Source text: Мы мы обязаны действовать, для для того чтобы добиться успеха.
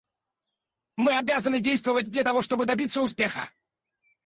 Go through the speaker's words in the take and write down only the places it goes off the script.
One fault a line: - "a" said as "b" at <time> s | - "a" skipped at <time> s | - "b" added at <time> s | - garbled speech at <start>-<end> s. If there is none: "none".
- "мы" skipped at 1.2 s
- "для" skipped at 2.2 s